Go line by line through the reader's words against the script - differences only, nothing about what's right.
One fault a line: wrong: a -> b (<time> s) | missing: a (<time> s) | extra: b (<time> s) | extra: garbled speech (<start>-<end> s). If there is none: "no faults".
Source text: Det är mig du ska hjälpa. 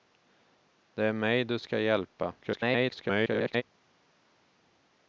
extra: garbled speech (2.4-3.6 s)